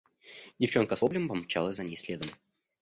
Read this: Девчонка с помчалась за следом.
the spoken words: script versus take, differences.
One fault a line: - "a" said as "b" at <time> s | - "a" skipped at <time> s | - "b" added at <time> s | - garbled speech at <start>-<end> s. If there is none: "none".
- "воплем" added at 1.0 s
- "ней" added at 1.8 s